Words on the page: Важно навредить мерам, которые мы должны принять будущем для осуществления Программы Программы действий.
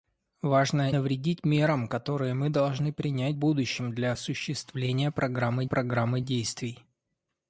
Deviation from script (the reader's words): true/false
false